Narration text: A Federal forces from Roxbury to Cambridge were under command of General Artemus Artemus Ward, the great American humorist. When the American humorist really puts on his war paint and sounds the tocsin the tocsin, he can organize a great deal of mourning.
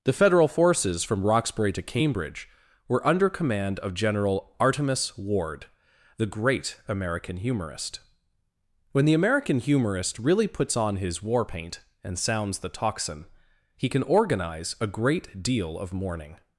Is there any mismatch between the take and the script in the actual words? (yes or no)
yes